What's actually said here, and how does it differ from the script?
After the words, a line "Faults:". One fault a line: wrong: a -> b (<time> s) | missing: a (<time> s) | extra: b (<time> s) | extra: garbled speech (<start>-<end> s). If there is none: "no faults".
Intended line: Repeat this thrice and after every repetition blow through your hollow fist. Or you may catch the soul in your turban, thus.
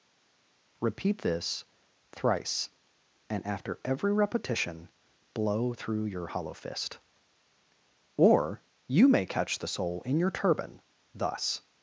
Repeat this thrice and after every repetition blow through your hollow fist. Or you may catch the soul in your turban, thus.
Faults:
no faults